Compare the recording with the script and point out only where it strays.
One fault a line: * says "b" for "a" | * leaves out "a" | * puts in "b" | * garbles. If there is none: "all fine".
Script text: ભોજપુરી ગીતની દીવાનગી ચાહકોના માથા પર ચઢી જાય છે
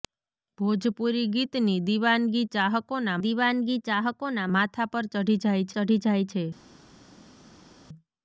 * puts in "દીવાનગી ચાહકોના"
* puts in "ચઢી જાય"